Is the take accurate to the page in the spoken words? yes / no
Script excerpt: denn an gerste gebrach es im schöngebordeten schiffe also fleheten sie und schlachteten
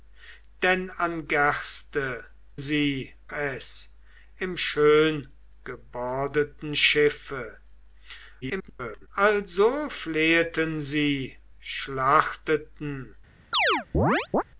no